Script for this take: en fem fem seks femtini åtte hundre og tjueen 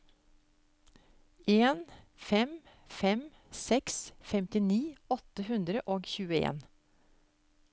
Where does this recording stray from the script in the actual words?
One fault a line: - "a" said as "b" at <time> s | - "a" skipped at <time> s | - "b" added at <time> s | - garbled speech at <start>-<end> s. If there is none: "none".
none